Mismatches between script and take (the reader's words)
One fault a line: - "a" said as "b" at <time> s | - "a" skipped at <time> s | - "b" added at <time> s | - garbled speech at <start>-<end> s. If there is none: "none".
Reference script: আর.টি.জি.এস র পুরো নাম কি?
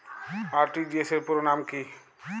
none